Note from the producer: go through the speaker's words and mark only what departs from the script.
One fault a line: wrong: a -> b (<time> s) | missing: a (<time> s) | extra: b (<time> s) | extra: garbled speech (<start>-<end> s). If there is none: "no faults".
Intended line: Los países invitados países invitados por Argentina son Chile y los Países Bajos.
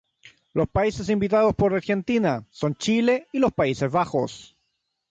missing: países invitados (1.6 s)